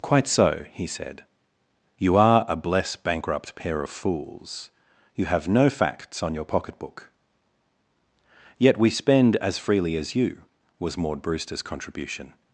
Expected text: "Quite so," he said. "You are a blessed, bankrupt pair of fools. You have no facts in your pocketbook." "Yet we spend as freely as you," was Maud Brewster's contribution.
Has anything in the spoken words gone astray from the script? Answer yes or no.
yes